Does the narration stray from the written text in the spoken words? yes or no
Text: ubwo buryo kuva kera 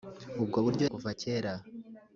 no